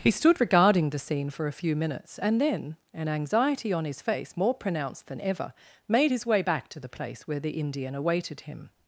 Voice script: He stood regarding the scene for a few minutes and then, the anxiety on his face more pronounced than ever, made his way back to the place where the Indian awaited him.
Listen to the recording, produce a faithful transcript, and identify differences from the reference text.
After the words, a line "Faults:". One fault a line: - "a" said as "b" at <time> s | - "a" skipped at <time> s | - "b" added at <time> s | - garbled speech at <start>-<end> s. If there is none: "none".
He stood regarding the scene for a few minutes and then, an anxiety on his face more pronounced than ever, made his way back to the place where the Indian awaited him.
Faults:
- "the" said as "an" at 2.9 s